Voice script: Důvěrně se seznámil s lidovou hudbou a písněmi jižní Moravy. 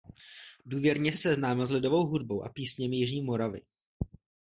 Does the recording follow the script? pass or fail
pass